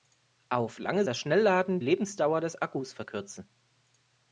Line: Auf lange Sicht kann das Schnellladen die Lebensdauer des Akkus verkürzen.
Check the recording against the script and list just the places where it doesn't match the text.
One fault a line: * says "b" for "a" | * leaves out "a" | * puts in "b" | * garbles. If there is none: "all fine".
* leaves out "Sicht kann"
* leaves out "die"